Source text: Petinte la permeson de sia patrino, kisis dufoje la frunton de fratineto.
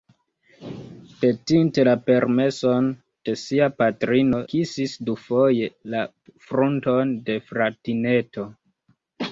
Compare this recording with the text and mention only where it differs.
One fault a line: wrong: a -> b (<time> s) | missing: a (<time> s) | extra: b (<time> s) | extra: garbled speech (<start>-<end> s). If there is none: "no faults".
no faults